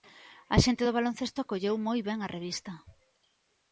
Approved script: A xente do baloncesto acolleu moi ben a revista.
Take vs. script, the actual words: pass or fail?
pass